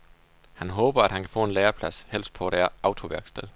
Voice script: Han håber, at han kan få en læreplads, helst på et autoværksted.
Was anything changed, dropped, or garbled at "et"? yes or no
no